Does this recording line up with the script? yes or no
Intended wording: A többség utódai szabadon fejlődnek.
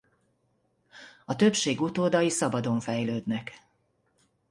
yes